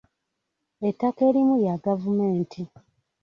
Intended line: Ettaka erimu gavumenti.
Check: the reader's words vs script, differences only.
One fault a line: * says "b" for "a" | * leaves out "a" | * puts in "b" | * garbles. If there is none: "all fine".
* puts in "lya"